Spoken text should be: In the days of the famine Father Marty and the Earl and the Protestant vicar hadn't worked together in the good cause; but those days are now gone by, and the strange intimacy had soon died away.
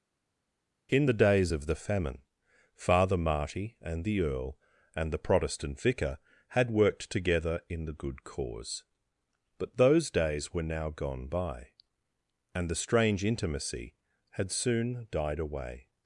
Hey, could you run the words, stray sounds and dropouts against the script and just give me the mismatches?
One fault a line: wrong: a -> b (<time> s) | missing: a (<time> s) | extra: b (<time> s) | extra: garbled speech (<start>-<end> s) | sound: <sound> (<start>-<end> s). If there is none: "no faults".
wrong: hadn't -> had (6.5 s)
wrong: are -> were (10.5 s)